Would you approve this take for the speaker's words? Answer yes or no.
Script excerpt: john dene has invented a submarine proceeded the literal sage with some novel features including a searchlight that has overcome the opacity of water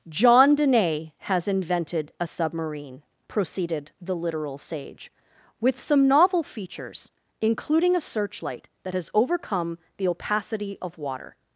yes